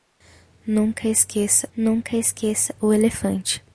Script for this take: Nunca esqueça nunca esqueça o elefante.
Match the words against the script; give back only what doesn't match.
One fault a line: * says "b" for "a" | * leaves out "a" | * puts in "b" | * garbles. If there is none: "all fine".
all fine